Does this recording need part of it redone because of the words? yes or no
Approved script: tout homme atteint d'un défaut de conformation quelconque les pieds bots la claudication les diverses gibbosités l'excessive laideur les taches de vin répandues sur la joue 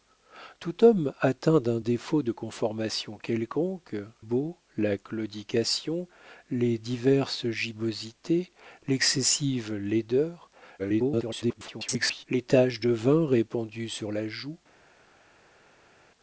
yes